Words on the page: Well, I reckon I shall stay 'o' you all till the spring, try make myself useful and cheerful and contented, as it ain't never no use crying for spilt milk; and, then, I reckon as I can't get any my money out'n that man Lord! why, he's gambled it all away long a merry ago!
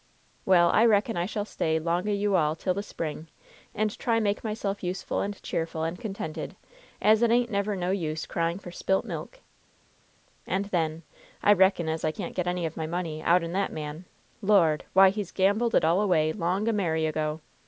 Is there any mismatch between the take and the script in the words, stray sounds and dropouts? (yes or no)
yes